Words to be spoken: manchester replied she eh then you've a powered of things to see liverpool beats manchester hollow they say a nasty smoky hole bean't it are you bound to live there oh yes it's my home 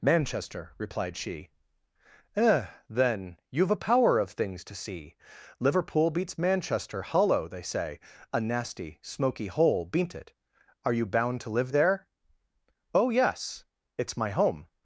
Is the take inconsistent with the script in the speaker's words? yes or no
yes